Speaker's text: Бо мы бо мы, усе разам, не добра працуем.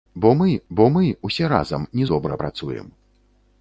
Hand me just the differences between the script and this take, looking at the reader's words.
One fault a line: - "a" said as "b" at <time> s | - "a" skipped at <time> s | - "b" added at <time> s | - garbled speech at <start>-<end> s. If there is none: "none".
none